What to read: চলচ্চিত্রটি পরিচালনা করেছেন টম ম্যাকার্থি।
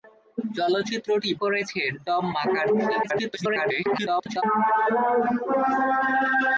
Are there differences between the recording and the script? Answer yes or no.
yes